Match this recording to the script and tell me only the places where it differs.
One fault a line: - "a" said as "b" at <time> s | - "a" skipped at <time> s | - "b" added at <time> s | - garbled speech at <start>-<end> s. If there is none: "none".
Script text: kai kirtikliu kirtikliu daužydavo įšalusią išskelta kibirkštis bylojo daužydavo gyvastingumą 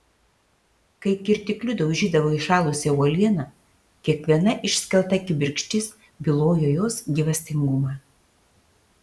- "kirtikliu" skipped at 1.7 s
- "uolieną kiekviena" added at 3.0 s
- "daužydavo" said as "jos" at 6.8 s